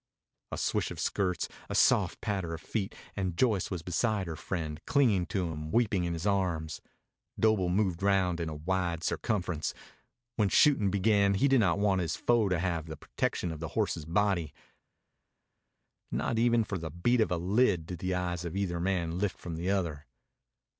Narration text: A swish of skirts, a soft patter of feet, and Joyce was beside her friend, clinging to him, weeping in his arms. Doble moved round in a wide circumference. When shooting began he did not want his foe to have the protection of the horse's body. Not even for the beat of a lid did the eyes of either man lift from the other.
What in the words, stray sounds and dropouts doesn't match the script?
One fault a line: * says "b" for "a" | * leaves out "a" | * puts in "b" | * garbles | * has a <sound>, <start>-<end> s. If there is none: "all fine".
all fine